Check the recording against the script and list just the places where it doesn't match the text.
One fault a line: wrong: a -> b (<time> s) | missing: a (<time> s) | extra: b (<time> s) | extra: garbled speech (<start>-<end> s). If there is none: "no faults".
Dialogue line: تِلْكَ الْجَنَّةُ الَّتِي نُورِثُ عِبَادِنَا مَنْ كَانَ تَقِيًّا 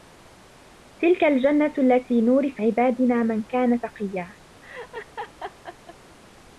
no faults